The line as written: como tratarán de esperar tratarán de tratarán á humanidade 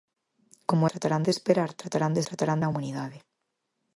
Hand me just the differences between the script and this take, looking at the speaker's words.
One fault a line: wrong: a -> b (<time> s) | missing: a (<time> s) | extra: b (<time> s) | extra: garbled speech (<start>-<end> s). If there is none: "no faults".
no faults